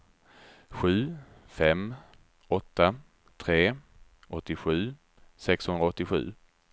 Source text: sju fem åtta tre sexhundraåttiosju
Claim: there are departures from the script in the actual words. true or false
true